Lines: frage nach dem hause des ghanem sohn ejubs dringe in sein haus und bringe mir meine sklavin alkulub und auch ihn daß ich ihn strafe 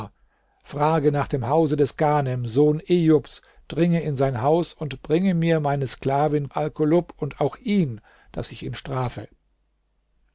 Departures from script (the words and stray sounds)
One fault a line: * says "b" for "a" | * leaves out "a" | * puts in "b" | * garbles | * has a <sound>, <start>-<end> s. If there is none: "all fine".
all fine